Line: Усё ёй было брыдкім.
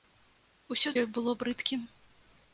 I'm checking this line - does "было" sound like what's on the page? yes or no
yes